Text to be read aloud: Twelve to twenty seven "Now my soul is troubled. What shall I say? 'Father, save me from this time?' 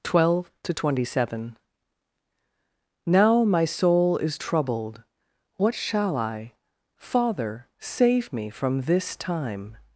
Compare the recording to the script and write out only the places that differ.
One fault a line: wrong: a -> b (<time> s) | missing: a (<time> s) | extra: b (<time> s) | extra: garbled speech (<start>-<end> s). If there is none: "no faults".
missing: say (6.5 s)